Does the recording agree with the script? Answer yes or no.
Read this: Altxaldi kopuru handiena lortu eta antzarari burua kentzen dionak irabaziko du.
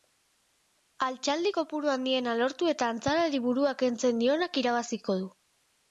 yes